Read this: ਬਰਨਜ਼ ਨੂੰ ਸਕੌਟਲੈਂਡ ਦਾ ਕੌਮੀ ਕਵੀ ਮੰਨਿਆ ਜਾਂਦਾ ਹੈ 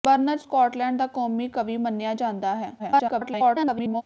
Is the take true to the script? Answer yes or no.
no